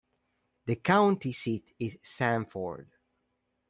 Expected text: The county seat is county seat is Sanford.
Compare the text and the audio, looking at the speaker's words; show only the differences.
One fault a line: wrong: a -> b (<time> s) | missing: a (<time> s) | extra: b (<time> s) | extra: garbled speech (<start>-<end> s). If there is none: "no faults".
missing: county seat is (2.0 s)